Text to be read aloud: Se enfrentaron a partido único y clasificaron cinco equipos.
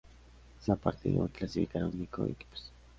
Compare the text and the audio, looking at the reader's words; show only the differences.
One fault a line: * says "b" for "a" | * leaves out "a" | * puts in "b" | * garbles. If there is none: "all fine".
* leaves out "enfrentaron"
* leaves out "único"
* says "único" for "cinco"